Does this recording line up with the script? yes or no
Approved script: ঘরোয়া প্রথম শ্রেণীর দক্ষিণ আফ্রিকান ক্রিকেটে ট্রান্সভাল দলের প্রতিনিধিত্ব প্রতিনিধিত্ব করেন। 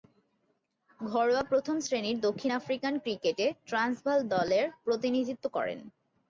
no